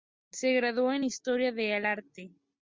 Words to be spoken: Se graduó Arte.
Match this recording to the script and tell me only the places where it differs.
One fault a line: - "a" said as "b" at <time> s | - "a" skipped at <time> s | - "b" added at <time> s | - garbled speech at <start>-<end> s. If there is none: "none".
- "en Historia del" added at 0.9 s